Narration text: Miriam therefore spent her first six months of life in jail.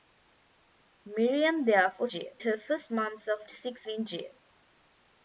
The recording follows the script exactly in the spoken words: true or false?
false